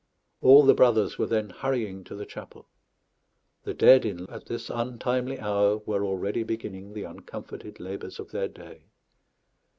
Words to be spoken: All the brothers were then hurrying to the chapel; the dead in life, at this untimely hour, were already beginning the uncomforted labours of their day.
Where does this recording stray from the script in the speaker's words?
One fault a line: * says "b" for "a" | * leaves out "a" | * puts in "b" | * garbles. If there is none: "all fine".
* leaves out "life"